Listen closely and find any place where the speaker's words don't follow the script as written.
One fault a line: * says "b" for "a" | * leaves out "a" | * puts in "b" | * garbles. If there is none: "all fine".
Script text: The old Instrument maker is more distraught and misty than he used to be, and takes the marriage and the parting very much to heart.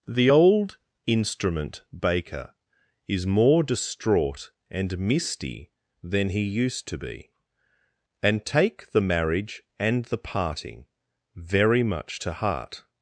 * says "baker" for "maker"
* says "take" for "takes"